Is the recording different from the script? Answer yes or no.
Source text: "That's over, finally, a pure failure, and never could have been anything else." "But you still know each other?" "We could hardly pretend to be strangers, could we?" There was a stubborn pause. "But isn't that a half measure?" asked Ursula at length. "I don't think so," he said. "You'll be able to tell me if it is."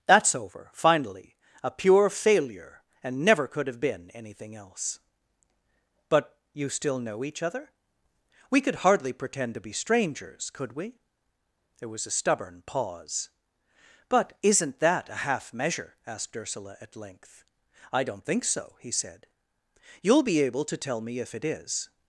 no